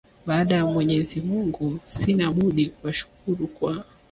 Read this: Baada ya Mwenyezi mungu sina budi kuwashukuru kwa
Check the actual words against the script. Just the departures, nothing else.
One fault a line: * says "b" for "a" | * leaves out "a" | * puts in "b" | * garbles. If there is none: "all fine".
all fine